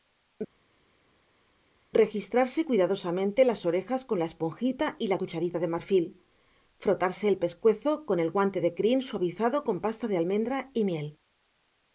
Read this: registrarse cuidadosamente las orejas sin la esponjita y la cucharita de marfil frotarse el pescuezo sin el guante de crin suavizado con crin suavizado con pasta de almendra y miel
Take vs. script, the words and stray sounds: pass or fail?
fail